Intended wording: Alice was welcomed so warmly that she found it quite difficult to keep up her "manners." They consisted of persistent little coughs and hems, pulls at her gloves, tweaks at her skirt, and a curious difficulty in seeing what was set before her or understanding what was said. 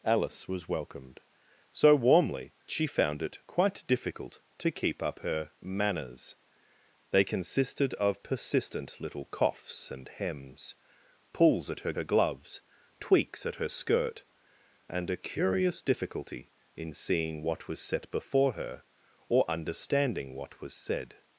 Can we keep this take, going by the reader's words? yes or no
no